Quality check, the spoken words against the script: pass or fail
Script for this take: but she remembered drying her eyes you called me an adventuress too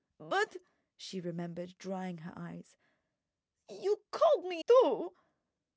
fail